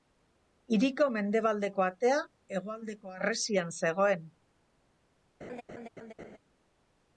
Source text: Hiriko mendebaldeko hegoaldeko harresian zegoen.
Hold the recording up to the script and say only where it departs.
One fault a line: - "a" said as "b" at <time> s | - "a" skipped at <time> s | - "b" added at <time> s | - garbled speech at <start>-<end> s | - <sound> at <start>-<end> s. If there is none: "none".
- "atea" added at 1.9 s
- laugh at 5.4-6.4 s